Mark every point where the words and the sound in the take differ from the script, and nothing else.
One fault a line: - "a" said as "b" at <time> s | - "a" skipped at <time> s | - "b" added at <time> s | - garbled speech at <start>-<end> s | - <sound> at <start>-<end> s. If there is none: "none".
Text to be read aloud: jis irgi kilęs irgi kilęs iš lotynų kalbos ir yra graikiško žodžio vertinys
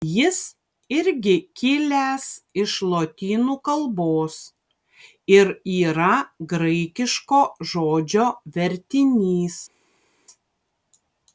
- "irgi kilęs" skipped at 2.2 s